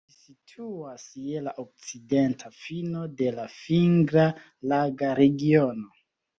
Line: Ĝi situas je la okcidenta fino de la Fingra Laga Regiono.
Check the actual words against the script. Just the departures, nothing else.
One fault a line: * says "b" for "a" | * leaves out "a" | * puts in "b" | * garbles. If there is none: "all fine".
all fine